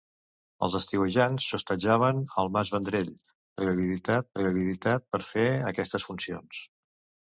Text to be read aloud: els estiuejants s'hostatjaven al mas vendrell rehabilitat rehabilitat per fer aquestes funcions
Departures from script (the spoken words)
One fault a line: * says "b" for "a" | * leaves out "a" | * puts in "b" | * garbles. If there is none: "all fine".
all fine